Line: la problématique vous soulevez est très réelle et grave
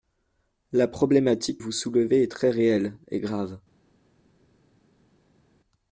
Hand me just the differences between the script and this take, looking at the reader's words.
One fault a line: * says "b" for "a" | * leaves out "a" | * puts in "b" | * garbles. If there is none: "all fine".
all fine